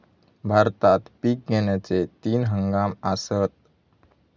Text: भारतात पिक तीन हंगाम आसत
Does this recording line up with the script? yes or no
no